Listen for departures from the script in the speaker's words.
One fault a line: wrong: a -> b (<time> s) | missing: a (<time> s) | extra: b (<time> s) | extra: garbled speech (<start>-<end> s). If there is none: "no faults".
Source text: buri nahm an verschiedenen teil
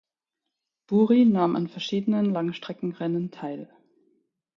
extra: langstreckenrennen (2.3 s)